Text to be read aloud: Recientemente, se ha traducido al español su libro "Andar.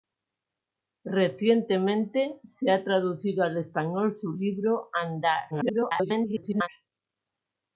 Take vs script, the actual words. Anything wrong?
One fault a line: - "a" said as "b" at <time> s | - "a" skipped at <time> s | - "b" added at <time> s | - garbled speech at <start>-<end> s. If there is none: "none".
- garbled speech at 5.5-6.7 s